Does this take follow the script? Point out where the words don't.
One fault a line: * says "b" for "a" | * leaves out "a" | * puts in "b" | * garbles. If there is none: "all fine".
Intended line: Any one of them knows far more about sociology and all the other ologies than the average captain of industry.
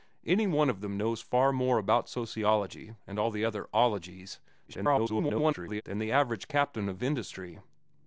* garbles